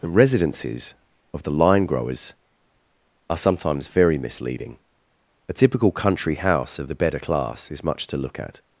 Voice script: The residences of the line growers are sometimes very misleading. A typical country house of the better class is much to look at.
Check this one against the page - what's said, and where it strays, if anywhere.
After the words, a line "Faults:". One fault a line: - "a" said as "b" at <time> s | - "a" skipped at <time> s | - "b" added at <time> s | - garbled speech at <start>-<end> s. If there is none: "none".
The residences of the line growers are sometimes very misleading. A typical country house of the better class is much to look at.
Faults:
none